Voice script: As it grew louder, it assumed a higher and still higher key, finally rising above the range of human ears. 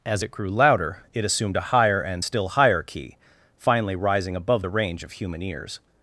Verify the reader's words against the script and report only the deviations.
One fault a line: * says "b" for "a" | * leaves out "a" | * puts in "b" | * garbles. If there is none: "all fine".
all fine